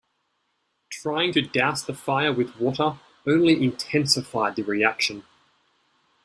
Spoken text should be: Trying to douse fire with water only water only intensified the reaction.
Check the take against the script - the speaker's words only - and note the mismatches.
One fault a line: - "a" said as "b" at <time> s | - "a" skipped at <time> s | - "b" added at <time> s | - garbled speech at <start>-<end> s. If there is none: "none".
- "the" added at 1.8 s
- "water only" skipped at 3.6 s